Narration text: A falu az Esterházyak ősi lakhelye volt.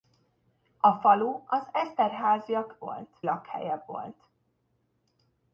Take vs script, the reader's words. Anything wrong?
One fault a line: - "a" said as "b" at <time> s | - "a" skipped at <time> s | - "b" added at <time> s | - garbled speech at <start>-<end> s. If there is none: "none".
- "ősi" said as "volt" at 2.8 s